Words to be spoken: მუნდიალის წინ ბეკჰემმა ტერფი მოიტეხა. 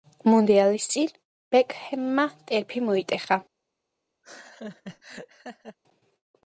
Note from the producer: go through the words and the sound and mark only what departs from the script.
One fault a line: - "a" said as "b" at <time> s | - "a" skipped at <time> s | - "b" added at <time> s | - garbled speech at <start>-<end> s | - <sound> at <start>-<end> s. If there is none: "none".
- laugh at 4.2-5.8 s